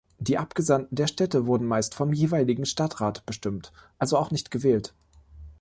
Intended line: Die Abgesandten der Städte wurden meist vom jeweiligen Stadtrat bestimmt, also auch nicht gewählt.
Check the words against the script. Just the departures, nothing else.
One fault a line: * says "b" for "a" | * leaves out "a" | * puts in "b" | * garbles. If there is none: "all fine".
all fine